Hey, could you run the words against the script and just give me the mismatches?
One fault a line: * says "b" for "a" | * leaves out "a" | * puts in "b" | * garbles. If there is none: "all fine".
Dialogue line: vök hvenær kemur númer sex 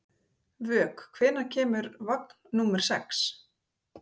* puts in "vagn"